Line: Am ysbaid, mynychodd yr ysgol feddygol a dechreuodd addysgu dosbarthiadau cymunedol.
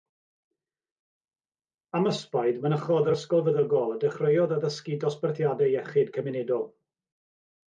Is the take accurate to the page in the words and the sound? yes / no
no